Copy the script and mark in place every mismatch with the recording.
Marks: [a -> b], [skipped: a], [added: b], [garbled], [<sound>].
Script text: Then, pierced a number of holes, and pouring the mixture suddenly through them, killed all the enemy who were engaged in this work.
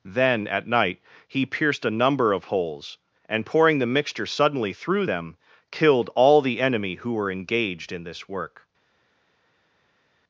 Then, [added: at night he] pierced a number of holes, and pouring the mixture suddenly through them, killed all the enemy who were engaged in this work.